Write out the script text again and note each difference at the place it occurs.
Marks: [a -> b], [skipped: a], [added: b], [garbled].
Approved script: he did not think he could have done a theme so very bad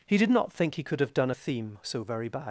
he did not think he could have done a theme so very bad